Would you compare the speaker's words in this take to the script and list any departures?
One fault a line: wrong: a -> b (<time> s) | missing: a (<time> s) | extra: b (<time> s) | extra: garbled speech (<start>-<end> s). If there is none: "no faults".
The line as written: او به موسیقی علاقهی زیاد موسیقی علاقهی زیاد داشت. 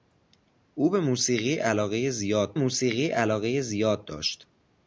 no faults